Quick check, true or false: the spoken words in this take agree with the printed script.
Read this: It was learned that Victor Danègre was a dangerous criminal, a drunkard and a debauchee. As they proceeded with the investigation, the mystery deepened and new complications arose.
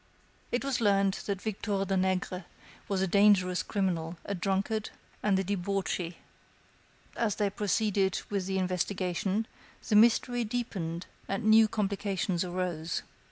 true